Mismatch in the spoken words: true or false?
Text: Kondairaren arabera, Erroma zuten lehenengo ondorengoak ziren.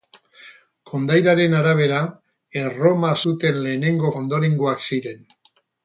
false